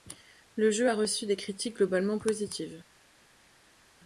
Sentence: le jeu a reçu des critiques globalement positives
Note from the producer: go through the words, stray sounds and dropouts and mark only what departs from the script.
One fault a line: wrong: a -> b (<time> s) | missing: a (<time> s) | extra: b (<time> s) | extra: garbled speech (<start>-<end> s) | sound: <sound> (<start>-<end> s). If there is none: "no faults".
no faults